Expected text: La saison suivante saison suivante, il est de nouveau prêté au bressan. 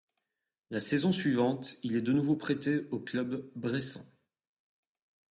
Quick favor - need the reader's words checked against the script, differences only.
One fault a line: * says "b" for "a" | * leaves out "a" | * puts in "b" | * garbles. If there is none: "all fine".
* leaves out "saison suivante"
* puts in "club"